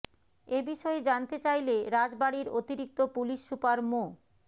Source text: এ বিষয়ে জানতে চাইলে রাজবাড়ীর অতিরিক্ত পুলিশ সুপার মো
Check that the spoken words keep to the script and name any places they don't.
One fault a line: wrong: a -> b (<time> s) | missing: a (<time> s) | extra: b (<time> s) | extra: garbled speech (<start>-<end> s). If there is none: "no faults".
no faults